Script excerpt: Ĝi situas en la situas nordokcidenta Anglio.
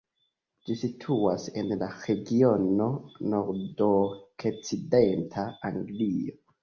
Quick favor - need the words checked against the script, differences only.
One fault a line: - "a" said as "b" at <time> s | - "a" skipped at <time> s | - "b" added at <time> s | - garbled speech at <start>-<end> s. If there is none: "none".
- "situas" said as "regiono" at 2.0 s